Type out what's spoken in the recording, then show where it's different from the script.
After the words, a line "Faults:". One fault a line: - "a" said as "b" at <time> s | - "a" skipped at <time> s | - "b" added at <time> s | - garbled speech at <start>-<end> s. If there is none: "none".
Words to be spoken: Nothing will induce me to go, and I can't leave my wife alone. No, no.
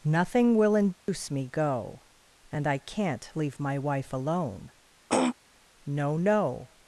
Nothing will induce me go, and I can't leave my wife alone. No, no.
Faults:
- "to" skipped at 1.5 s